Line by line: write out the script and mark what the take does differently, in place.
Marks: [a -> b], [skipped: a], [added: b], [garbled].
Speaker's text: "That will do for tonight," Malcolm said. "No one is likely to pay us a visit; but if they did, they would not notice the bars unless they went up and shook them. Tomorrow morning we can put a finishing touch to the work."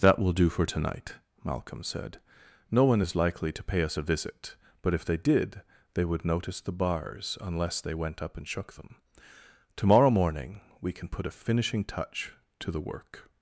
"That will do for tonight," Malcolm said. "No one is likely to pay us a visit; but if they did, they would [skipped: not] notice the bars unless they went up and shook them. Tomorrow morning we can put a finishing touch to the work."